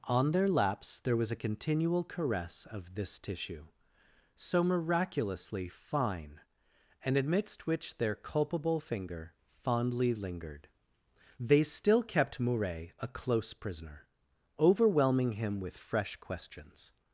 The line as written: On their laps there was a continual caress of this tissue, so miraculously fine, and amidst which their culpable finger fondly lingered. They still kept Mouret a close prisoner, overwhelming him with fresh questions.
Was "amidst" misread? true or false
false